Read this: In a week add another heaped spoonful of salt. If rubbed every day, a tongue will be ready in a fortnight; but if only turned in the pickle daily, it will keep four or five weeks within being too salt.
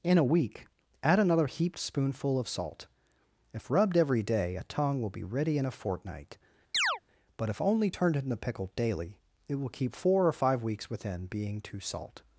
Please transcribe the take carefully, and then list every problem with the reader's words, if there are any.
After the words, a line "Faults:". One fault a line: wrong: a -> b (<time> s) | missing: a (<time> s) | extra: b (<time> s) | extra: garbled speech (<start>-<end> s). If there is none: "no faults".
In a week add another heaped spoonful of salt. If rubbed every day, a tongue will be ready in a fortnight; but if only turned in the pickle daily, it will keep four or five weeks within being too salt.
Faults:
no faults